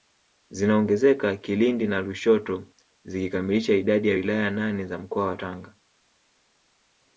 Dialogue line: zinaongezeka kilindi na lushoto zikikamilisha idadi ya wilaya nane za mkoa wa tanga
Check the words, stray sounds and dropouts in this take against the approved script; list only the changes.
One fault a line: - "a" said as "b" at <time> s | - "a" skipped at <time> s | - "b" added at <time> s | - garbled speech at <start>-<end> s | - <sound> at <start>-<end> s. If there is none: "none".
none